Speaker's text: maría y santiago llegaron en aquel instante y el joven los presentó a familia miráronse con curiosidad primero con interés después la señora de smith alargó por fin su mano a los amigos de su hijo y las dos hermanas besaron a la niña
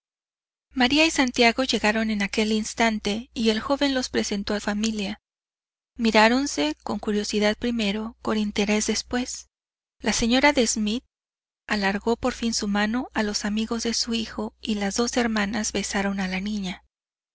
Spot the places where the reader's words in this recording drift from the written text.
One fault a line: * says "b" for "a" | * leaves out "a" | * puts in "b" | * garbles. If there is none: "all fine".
all fine